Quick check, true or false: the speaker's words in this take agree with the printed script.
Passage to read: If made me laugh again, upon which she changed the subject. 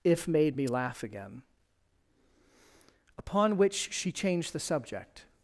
true